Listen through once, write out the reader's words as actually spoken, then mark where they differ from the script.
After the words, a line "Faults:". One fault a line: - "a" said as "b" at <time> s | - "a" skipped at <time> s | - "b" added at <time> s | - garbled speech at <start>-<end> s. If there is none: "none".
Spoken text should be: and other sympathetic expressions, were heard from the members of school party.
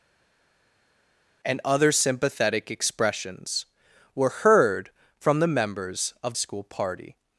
and other sympathetic expressions, were heard from the members of school party.
Faults:
none